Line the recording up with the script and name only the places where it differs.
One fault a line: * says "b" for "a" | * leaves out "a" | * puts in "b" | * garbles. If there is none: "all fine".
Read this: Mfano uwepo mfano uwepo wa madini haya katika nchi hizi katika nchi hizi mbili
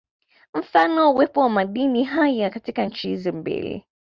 * leaves out "mfano uwepo"
* leaves out "katika nchi hizi"